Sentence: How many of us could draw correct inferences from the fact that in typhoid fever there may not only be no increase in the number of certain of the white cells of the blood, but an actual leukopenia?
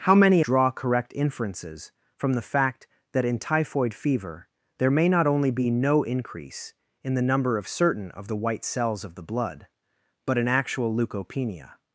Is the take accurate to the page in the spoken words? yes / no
no